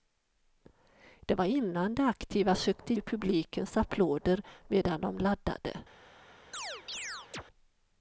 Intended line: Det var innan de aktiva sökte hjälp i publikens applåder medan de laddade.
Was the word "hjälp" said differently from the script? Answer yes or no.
yes